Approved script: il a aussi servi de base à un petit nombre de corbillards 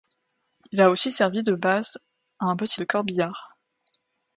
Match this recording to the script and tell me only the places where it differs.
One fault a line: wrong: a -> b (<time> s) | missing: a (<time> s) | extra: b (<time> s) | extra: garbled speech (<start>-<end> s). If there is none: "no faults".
missing: nombre (2.8 s)